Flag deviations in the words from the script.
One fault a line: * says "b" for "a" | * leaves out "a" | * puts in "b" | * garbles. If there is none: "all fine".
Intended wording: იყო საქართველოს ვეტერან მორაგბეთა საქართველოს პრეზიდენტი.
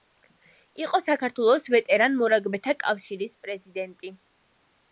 * says "კავშირის" for "საქართველოს"